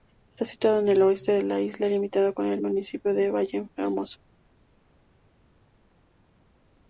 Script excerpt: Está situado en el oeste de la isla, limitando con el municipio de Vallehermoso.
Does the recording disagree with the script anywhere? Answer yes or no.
no